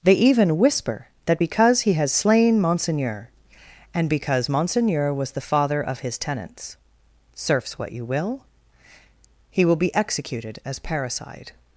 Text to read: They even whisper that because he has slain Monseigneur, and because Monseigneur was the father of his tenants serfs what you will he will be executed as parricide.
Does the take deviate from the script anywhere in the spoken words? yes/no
no